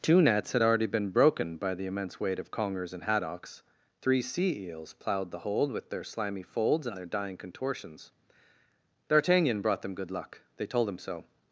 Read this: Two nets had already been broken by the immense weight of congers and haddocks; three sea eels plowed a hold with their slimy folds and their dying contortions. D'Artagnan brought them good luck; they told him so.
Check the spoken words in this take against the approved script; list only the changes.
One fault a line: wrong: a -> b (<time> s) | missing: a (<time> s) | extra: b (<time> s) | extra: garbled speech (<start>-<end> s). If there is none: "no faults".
wrong: a -> the (5.3 s)